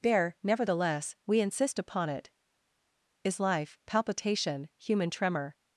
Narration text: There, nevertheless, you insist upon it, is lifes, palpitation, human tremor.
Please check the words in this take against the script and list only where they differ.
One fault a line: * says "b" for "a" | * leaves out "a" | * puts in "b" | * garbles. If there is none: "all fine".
* says "we" for "you"
* says "life" for "lifes"